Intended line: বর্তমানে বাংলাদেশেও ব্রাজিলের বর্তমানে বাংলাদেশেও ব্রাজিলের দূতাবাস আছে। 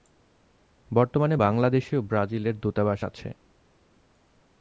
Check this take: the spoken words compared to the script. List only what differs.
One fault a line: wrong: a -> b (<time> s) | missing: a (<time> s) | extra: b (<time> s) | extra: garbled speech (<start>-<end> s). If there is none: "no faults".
missing: বর্তমানে বাংলাদেশেও ব্রাজিলের (2.6 s)